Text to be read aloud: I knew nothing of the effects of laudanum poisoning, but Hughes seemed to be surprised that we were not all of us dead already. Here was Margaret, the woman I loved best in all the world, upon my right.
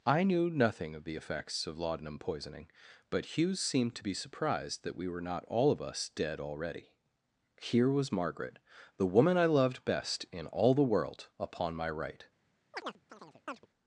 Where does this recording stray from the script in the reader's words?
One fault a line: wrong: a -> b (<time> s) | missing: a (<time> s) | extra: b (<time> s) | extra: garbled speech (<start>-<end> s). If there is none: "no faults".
no faults